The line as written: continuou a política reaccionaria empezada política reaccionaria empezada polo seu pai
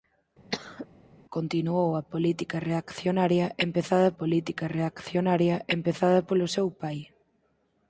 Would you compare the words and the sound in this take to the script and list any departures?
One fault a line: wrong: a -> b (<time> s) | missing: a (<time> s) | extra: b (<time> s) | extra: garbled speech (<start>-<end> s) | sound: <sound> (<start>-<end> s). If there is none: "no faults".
sound: cough (0.5-0.9 s)